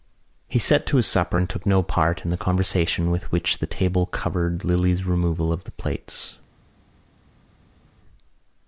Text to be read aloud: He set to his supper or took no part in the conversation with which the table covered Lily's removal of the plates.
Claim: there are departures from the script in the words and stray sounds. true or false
true